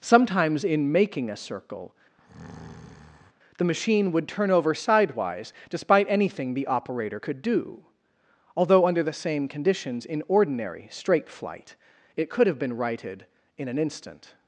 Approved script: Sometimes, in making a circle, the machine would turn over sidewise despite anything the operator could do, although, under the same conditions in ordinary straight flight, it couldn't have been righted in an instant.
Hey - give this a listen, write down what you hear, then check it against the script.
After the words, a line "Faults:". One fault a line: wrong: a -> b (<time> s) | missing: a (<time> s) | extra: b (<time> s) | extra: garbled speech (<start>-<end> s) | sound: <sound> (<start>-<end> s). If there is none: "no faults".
Sometimes, in making a circle, the machine would turn over sidewise despite anything the operator could do, although, under the same conditions in ordinary straight flight, it could have been righted in an instant.
Faults:
sound: breath (2.2-3.3 s)
wrong: couldn't -> could (12.3 s)